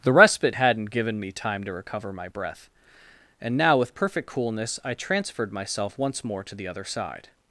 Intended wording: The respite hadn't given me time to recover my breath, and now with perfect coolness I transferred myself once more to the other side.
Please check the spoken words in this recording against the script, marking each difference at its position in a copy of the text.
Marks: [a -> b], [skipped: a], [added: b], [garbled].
The respite hadn't given me time to recover my breath, and now with perfect coolness I transferred myself once more to the other side.